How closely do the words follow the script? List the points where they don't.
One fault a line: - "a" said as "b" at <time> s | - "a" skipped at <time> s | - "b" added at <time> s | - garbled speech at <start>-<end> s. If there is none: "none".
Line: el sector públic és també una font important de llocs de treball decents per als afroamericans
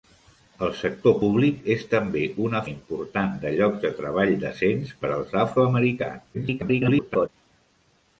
- "font" skipped at 2.6 s
- garbled speech at 6.3-7.3 s